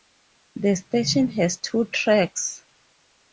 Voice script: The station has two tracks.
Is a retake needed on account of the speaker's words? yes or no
no